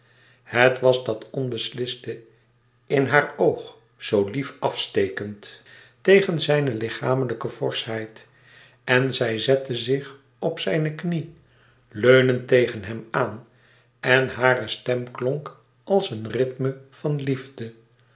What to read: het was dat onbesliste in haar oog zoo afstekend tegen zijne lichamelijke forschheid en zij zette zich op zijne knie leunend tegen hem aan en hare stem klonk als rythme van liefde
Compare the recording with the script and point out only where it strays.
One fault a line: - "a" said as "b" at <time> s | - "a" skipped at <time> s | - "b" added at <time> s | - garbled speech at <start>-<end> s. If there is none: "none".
- "lief" added at 4.3 s
- "een" added at 16.1 s